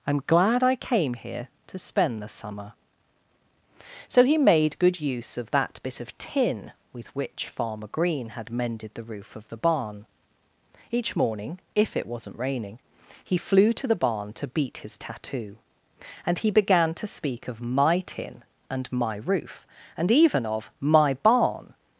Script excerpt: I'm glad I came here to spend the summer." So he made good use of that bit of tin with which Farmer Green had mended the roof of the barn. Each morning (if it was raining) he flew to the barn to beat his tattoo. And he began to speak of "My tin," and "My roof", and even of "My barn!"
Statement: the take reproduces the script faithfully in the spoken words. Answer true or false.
false